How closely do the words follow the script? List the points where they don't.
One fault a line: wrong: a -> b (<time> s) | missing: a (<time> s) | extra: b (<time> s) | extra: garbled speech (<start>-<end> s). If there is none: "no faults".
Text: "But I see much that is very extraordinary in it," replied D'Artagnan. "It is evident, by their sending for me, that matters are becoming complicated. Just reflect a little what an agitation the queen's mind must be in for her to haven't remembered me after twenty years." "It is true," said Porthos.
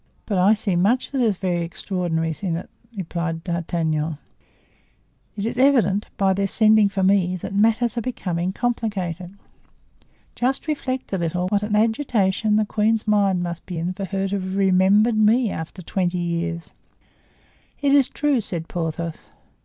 wrong: haven't -> have (14.4 s)